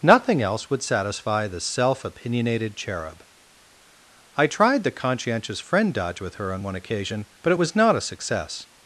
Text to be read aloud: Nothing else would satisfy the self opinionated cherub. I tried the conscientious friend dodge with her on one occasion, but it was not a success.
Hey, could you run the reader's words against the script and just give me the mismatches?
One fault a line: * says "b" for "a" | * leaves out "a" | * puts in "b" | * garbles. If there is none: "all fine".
all fine